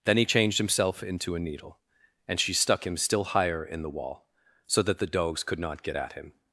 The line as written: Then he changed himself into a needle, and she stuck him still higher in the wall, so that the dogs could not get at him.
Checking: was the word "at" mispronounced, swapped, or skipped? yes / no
no